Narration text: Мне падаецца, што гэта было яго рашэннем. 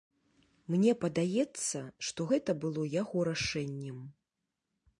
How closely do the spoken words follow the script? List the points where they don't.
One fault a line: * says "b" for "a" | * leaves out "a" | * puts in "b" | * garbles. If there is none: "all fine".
all fine